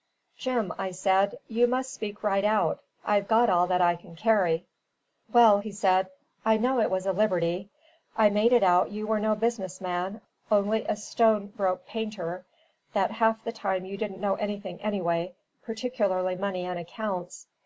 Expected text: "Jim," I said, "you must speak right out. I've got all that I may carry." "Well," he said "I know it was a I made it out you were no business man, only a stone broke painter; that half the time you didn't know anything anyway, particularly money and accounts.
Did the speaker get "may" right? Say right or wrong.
wrong